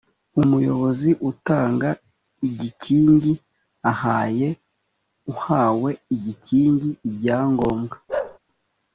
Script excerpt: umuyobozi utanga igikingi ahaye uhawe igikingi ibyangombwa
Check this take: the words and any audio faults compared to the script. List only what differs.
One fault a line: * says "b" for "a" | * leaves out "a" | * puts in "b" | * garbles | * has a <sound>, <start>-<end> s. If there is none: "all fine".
* has a bark, 8.1-8.4 s